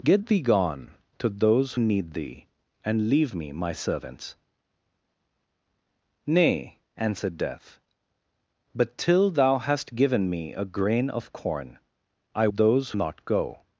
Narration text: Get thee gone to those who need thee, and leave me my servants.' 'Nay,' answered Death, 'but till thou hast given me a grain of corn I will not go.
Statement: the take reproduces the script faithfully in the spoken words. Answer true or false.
false